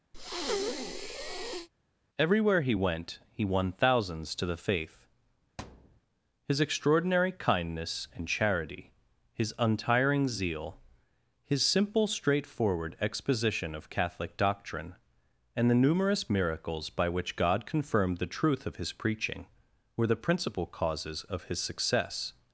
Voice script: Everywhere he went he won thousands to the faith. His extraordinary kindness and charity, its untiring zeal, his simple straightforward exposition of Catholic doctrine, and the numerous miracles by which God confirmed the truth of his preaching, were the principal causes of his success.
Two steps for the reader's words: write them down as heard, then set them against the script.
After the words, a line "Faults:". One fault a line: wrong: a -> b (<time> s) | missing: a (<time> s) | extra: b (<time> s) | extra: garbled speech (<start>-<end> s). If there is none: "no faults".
Everywhere he went he won thousands to the faith. His extraordinary kindness and charity, his untiring zeal, his simple straightforward exposition of Catholic doctrine, and the numerous miracles by which God confirmed the truth of his preaching, were the principal causes of his success.
Faults:
wrong: its -> his (9.3 s)